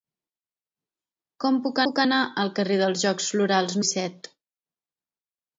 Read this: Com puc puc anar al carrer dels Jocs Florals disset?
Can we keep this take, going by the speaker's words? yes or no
yes